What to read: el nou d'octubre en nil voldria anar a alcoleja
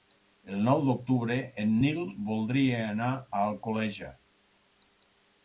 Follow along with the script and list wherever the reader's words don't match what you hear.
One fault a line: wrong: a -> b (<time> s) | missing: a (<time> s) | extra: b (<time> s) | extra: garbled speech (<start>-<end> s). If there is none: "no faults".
no faults